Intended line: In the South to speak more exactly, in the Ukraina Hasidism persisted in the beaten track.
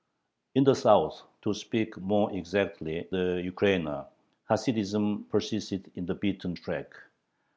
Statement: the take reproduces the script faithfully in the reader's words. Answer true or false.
false